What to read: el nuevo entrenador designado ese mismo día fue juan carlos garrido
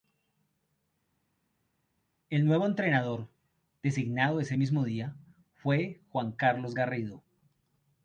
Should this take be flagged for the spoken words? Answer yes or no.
no